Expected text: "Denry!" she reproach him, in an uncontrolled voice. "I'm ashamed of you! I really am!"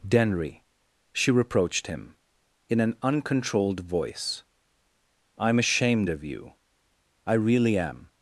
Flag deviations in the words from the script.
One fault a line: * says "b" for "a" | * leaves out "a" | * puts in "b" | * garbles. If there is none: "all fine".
* says "reproached" for "reproach"